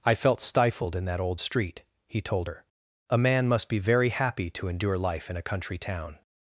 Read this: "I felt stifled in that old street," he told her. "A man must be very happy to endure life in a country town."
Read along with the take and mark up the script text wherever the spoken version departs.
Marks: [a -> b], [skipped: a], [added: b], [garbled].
"I felt stifled in that old street," he told her. "A man must be very happy to endure life in a country town."